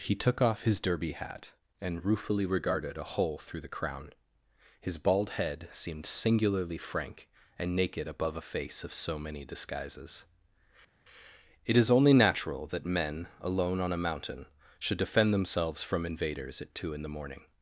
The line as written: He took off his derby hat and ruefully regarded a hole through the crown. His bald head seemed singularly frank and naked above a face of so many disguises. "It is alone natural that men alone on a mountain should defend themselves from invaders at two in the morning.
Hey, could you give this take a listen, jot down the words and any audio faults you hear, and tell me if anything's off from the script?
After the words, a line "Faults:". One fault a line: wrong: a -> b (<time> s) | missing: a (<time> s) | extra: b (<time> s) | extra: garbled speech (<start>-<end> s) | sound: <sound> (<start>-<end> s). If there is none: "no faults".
He took off his derby hat and ruefully regarded a hole through the crown. His bald head seemed singularly frank and naked above a face of so many disguises. "It is only natural that men alone on a mountain should defend themselves from invaders at two in the morning.
Faults:
wrong: alone -> only (11.9 s)